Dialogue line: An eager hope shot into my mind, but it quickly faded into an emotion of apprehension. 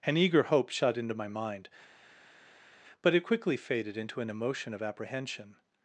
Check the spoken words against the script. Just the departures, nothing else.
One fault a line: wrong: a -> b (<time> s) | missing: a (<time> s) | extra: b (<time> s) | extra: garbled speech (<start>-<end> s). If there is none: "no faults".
no faults